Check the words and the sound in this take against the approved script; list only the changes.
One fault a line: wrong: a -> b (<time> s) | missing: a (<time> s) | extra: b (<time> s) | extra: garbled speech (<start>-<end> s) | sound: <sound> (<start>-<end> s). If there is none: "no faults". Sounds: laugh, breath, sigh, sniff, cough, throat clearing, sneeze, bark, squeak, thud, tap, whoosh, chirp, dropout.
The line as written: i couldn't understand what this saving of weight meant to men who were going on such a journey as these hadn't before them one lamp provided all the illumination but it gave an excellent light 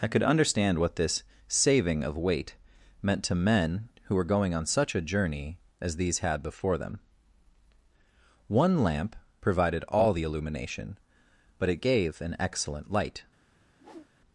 wrong: couldn't -> could (0.1 s)
wrong: hadn't -> had (6.2 s)
sound: whoosh (13.7-14.1 s)